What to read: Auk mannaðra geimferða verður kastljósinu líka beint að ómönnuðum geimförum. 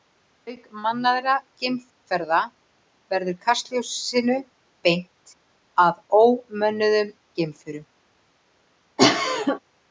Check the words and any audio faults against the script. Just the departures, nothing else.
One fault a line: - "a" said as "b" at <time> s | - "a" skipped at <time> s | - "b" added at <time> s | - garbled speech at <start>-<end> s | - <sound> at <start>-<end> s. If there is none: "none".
- "líka" skipped at 4.4 s
- cough at 9.0-9.6 s